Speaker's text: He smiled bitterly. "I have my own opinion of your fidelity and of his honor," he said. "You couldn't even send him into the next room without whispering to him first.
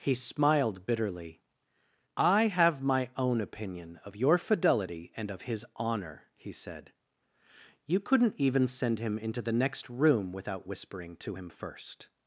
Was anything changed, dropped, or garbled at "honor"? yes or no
no